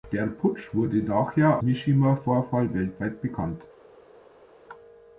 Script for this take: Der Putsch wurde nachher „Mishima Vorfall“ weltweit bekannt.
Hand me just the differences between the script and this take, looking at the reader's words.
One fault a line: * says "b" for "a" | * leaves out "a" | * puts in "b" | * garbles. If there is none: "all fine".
all fine